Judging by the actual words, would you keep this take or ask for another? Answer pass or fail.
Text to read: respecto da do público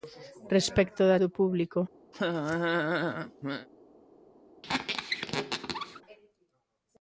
pass